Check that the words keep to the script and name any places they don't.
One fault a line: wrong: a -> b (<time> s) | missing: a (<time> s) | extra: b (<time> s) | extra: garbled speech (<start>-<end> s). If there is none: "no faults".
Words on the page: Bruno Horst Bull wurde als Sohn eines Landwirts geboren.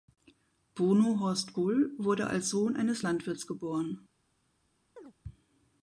no faults